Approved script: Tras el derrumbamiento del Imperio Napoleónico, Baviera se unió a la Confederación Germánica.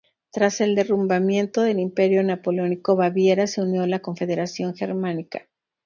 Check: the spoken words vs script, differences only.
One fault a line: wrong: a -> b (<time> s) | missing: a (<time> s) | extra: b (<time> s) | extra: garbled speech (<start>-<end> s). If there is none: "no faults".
no faults